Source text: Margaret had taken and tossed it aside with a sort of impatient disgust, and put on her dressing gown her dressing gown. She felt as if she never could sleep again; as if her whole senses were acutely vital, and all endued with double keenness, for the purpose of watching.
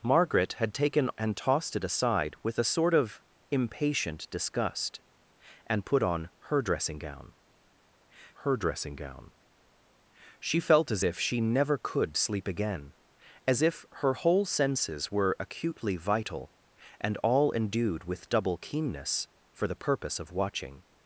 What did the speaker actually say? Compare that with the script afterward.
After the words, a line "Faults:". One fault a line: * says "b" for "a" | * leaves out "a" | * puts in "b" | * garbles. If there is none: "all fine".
Margaret had taken and tossed it aside with a sort of impatient disgust, and put on her dressing gown her dressing gown. She felt as if she never could sleep again; as if her whole senses were acutely vital, and all endued with double keenness, for the purpose of watching.
Faults:
all fine